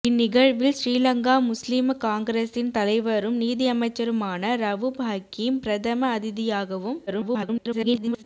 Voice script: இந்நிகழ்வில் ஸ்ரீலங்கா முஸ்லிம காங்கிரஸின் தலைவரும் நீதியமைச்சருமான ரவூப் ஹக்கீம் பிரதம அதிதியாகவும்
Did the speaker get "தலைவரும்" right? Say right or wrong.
right